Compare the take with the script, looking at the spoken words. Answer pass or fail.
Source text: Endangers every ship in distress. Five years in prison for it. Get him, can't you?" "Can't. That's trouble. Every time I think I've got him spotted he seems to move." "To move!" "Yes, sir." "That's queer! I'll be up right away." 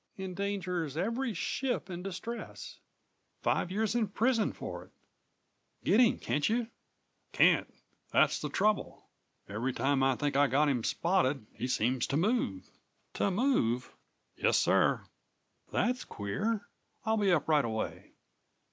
fail